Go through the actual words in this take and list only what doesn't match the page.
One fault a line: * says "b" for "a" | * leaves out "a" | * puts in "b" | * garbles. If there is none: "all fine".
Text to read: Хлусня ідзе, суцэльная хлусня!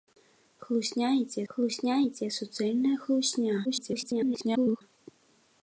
* puts in "хлусня ідзе"
* garbles